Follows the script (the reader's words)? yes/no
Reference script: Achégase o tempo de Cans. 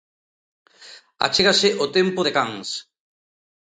yes